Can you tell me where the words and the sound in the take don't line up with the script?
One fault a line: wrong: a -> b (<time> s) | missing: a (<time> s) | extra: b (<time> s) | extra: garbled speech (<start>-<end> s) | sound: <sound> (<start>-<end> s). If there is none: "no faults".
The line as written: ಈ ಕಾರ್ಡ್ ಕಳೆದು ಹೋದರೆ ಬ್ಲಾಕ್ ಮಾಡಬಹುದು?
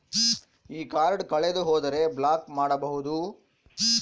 no faults